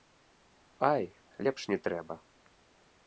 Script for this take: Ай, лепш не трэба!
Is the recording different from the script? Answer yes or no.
no